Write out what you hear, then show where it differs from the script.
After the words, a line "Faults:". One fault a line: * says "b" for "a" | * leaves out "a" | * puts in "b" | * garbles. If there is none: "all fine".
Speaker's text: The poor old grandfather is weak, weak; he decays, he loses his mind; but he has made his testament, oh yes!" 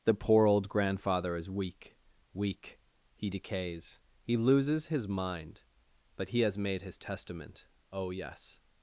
The poor old grandfather is weak, weak; he decays, he loses his mind; but he has made his testament, oh yes!"
Faults:
all fine